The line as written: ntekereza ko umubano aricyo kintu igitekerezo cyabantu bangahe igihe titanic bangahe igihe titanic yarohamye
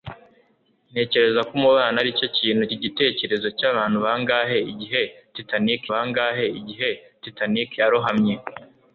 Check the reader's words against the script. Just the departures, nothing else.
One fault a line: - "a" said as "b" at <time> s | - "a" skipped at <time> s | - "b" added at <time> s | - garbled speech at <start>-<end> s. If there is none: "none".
none